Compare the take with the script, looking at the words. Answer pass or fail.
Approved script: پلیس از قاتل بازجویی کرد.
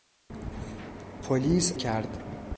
fail